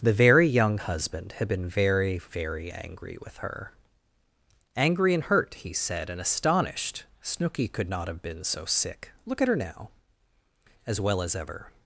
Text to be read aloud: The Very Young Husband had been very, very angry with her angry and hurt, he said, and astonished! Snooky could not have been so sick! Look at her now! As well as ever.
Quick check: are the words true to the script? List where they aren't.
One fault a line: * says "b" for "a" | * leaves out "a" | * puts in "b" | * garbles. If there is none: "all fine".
all fine